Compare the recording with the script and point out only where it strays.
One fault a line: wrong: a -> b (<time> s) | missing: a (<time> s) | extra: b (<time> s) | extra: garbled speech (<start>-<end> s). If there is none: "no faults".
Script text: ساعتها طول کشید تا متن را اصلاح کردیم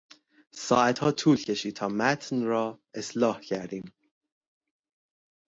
no faults